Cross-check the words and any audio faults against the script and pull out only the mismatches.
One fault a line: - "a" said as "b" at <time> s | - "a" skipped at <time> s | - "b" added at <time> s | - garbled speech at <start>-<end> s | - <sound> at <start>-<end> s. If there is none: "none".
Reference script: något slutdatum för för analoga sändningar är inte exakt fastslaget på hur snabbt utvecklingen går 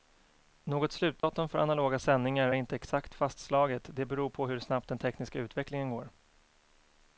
- dropout at 1.2-1.2 s
- "för" skipped at 1.6 s
- "det beror" added at 3.9 s
- "den tekniska" added at 4.9 s